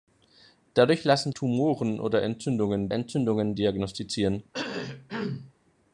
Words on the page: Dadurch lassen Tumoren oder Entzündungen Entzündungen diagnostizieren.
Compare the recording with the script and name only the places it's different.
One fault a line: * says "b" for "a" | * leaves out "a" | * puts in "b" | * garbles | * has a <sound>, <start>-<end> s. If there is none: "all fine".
* has a cough, 4.5-5.5 s